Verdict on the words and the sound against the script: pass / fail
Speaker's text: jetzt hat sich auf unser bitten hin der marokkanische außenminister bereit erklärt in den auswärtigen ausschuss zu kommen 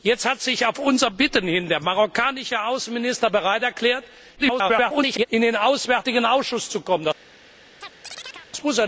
fail